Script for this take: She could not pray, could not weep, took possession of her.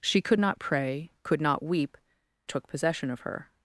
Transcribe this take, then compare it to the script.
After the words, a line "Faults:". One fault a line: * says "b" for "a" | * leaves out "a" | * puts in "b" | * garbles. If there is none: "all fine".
She could not pray, could not weep, took possession of her.
Faults:
all fine